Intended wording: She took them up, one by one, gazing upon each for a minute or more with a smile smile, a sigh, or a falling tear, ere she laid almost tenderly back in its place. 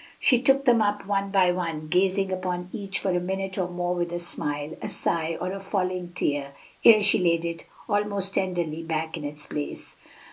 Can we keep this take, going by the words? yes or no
no